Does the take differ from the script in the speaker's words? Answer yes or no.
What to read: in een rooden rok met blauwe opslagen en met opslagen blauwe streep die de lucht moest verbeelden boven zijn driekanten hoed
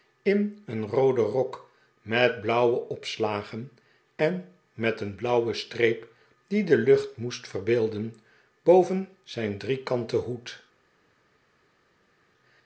yes